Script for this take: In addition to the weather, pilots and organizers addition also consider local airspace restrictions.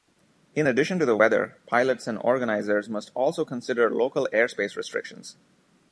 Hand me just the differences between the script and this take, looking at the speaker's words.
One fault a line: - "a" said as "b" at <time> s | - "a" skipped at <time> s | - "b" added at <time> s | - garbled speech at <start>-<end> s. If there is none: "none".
- "addition" said as "must" at 2.9 s